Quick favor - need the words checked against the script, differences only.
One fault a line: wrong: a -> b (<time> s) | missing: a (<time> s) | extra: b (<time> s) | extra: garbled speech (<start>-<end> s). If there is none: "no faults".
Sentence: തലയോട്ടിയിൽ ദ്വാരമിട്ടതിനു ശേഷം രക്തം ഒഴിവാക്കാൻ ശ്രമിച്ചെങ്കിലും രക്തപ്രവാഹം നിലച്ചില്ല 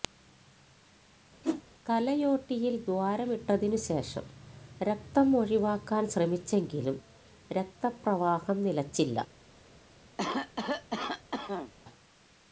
no faults